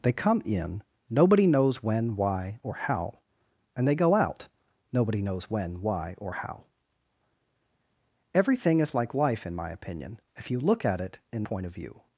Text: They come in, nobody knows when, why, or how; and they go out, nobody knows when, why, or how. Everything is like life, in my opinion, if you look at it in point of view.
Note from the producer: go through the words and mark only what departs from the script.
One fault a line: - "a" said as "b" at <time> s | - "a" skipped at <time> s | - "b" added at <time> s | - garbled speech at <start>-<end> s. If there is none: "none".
none